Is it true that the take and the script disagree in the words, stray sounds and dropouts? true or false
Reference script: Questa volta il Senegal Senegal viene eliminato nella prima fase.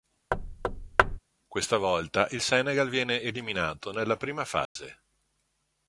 true